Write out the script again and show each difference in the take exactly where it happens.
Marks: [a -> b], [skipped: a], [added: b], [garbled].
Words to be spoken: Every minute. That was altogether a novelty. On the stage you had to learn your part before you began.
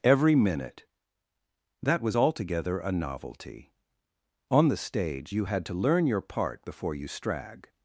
Every minute. That was altogether a novelty. On the stage you had to learn your part before you [began. -> strag]